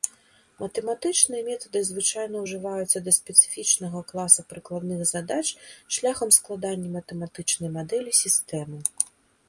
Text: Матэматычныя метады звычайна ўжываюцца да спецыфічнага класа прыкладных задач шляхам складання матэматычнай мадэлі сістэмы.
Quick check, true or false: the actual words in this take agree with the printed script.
true